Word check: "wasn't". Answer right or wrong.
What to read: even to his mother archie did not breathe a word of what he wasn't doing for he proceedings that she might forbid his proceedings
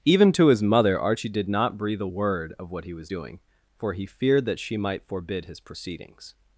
wrong